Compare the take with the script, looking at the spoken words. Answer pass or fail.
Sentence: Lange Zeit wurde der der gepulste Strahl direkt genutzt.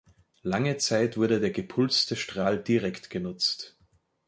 fail